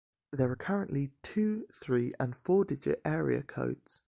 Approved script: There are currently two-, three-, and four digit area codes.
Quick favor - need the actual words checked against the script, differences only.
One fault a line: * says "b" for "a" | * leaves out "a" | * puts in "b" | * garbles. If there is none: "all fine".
all fine